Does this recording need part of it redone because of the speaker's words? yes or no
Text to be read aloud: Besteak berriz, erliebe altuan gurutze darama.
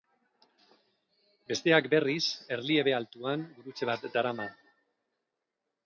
yes